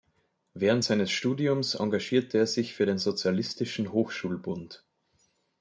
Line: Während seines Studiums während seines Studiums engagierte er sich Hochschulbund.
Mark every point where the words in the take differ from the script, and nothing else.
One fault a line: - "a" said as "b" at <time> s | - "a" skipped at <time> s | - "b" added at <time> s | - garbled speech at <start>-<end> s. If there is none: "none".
- "während seines Studiums engagierte er sich" said as "engagierte er sich für den Sozialistischen" at 1.7 s